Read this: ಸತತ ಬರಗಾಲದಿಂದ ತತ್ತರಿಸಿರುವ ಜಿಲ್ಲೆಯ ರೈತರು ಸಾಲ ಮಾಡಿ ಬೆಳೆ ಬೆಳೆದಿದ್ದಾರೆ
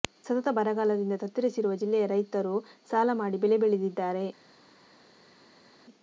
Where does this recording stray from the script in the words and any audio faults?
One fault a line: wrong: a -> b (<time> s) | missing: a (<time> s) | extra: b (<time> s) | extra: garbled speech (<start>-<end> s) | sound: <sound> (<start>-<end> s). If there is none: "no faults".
no faults